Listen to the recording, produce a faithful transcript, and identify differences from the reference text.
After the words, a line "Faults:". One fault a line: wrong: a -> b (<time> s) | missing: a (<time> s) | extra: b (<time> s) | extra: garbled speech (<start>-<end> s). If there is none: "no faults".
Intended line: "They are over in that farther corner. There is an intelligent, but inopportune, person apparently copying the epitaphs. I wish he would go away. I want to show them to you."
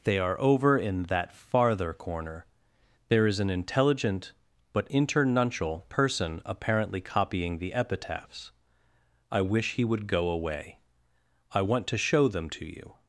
"They are over in that farther corner. There is an intelligent, but internuncial, person apparently copying the epitaphs. I wish he would go away. I want to show them to you."
Faults:
wrong: inopportune -> internuncial (4.9 s)